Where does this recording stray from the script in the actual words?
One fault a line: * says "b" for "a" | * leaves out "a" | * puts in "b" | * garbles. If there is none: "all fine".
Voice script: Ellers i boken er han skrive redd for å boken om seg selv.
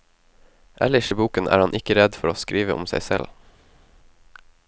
* says "ikke" for "skrive"
* says "skrive" for "boken"